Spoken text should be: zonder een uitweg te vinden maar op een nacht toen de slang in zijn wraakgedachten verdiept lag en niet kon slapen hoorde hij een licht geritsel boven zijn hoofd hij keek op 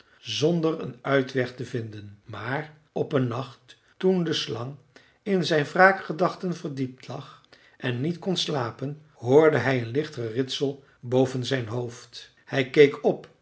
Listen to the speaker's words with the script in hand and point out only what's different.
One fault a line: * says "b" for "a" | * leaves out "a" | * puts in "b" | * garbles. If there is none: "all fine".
all fine